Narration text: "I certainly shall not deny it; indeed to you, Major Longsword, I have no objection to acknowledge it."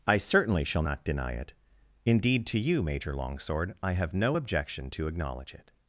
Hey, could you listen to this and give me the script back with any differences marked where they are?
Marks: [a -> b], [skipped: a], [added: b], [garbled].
"I certainly shall not deny it; indeed to you, Major Longsword, I have no objection to acknowledge it."